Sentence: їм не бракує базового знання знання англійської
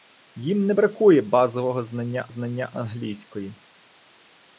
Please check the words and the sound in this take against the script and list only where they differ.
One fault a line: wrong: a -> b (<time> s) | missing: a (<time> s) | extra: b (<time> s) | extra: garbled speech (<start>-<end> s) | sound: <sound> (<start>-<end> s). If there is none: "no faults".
no faults